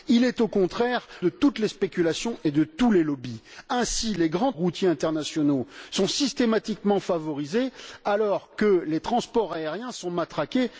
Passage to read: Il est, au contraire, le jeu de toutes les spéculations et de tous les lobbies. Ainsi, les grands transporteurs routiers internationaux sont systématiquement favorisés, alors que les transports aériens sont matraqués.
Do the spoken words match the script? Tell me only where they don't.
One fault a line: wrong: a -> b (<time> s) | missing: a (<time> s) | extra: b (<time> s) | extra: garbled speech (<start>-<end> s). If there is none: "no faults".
missing: le jeu (1.1 s)
missing: transporteurs (4.5 s)